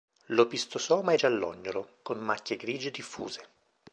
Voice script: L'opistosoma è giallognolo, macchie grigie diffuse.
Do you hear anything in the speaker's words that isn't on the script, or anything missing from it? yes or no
yes